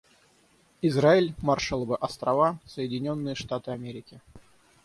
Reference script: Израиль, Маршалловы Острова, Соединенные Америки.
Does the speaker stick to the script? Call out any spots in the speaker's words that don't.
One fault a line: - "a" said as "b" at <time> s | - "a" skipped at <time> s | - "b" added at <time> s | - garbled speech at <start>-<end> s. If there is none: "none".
- "Штаты" added at 3.3 s